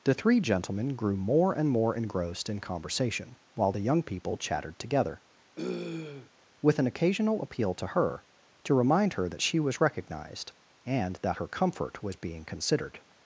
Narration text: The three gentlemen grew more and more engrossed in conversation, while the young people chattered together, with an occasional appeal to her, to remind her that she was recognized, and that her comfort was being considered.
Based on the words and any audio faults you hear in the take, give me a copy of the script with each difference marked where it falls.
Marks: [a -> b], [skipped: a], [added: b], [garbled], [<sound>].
The three gentlemen grew more and more engrossed in conversation, while the young people chattered together, [throat clearing] with an occasional appeal to her, to remind her that she was recognized, and that her comfort was being considered.